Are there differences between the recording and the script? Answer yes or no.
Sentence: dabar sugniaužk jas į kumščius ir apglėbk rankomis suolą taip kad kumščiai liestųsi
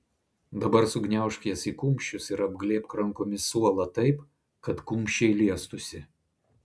no